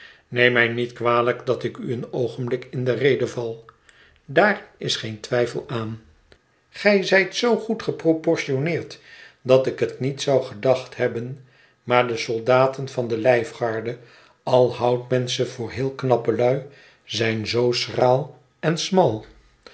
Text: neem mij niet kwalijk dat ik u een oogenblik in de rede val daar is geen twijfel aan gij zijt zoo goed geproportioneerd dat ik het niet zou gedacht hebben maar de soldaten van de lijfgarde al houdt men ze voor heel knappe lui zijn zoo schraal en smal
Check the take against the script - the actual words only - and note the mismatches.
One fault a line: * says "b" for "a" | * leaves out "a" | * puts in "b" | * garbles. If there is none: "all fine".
all fine